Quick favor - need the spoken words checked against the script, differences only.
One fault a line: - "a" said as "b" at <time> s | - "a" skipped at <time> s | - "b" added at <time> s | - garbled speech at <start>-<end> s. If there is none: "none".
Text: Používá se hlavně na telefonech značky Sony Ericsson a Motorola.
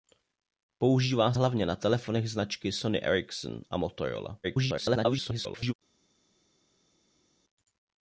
- "se" skipped at 1.3 s
- garbled speech at 4.4-5.7 s